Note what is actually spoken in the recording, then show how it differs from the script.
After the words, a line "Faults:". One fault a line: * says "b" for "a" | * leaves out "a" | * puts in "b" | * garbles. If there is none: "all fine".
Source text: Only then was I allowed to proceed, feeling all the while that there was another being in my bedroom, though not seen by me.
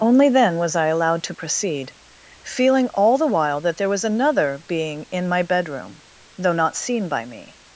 Only then was I allowed to proceed, feeling all the while that there was another being in my bedroom, though not seen by me.
Faults:
all fine